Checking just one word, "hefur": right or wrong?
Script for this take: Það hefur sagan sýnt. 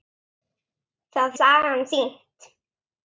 wrong